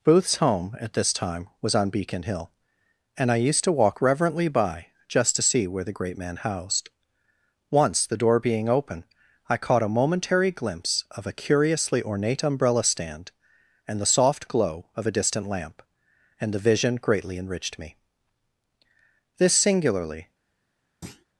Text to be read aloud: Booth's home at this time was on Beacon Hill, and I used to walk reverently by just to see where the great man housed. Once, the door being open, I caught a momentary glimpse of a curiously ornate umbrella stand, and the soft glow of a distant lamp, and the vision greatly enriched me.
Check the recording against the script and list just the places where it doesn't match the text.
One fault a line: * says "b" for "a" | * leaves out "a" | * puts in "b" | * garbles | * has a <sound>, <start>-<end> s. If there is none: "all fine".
* puts in "This singularly"
* has a thud, 21.0-21.3 s